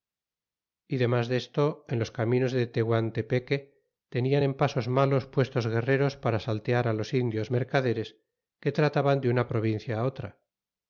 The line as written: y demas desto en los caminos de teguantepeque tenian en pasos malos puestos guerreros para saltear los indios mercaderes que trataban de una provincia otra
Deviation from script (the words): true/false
false